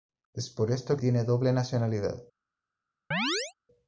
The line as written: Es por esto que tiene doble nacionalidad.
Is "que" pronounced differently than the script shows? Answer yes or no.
yes